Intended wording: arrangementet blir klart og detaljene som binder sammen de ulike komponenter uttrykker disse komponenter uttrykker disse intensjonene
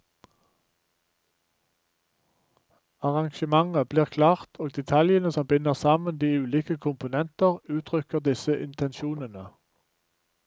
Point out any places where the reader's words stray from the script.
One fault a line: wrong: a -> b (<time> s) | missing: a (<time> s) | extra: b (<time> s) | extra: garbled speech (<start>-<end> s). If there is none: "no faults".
missing: komponenter uttrykker disse (8.6 s)